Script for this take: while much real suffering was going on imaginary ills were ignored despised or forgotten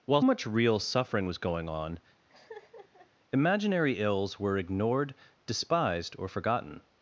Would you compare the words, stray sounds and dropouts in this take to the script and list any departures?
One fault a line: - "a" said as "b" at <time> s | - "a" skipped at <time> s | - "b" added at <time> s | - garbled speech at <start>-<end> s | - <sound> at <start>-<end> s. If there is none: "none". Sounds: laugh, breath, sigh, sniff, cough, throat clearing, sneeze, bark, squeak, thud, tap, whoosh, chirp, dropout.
- laugh at 2.3-3.1 s